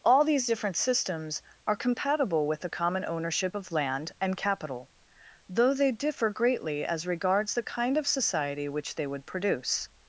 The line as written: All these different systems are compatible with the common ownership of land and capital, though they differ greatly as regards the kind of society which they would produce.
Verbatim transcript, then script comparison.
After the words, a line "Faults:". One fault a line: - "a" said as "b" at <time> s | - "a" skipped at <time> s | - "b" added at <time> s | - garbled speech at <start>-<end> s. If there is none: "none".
All these different systems are compatible with the common ownership of land and capital, though they differ greatly as regards the kind of society which they would produce.
Faults:
none